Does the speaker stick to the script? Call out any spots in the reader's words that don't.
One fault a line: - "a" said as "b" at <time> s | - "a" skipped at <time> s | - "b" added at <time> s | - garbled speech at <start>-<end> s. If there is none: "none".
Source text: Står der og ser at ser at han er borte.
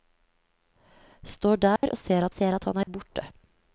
none